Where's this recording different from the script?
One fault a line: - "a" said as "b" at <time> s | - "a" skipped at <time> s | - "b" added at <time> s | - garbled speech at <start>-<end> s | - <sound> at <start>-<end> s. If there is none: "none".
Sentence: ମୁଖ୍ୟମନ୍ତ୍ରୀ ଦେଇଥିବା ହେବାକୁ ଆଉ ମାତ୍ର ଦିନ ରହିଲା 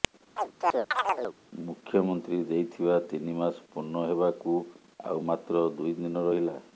- chirp at 0.4-1.4 s
- "ତିନି ମାସ ପୂର୍ଣ୍ଣ" added at 3.1 s
- "ଦୁଇ" added at 5.8 s